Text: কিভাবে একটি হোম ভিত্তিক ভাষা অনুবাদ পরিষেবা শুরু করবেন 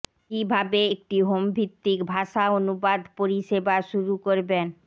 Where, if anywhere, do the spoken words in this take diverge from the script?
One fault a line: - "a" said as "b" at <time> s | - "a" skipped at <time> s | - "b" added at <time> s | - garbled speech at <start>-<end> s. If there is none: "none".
none